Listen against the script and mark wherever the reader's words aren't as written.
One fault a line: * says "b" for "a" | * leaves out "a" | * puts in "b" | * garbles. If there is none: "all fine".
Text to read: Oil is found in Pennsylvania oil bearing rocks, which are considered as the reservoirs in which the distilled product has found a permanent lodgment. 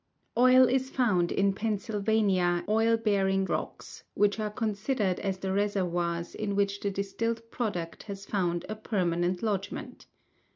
all fine